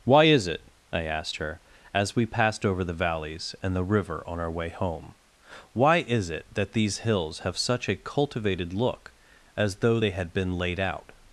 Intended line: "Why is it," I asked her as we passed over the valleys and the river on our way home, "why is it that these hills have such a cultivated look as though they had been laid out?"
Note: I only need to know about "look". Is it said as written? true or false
true